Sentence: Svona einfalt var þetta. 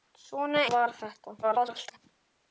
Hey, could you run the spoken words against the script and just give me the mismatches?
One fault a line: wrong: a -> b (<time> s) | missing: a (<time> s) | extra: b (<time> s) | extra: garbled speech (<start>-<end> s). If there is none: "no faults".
missing: einfalt (0.6 s)
extra: garbled speech (1.4-2.0 s)